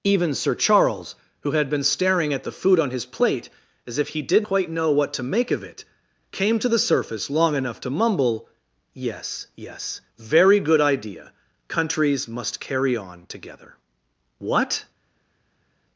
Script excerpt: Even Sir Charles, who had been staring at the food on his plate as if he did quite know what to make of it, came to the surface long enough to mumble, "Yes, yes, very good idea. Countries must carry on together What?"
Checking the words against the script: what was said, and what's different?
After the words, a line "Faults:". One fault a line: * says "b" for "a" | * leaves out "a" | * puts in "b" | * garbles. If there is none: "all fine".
Even Sir Charles, who had been staring at the food on his plate as if he did quite know what to make of it, came to the surface long enough to mumble, "Yes, yes, very good idea. Countries must carry on together What?"
Faults:
all fine